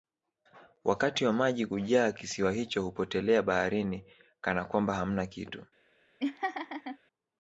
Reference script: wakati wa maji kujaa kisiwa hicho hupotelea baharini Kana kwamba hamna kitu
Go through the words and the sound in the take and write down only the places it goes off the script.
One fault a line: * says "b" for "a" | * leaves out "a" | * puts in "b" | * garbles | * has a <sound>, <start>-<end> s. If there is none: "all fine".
* has a laugh, 6.2-7.0 s